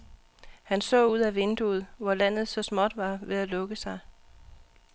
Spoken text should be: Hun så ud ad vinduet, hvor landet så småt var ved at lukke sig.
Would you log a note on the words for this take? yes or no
yes